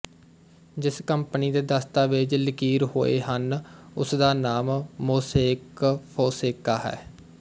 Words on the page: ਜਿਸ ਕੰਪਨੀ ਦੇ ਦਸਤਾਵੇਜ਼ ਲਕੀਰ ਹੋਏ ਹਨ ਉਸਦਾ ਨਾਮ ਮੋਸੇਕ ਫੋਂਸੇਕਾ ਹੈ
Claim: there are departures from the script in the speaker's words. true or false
false